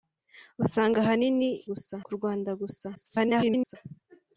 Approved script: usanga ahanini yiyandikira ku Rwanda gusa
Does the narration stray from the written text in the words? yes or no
yes